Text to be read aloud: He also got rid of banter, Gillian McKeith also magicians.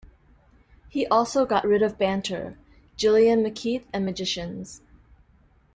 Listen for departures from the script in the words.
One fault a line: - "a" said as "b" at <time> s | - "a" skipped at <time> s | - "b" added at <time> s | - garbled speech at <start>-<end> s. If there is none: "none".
- "also" said as "and" at 3.9 s